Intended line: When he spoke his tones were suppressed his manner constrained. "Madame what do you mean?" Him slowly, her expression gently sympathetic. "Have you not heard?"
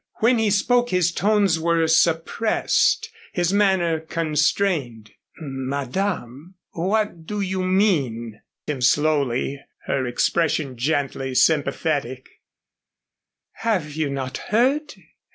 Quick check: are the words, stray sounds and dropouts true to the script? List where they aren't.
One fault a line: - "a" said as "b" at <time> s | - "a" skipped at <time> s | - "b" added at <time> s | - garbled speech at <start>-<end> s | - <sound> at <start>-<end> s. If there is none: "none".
none